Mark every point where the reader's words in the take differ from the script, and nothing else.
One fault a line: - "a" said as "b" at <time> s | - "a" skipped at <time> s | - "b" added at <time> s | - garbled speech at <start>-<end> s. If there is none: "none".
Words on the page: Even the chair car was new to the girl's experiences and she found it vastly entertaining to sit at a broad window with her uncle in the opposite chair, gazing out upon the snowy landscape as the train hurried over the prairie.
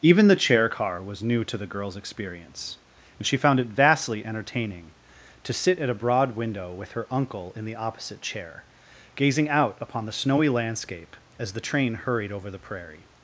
- "experiences" said as "experience" at 2.0 s